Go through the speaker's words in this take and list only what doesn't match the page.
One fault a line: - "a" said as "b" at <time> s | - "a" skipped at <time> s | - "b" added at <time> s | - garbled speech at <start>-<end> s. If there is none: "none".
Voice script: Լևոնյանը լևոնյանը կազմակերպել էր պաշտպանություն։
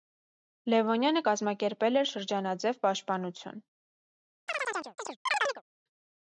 - "լևոնյանը" skipped at 1.2 s
- "շրջանաձև" added at 2.1 s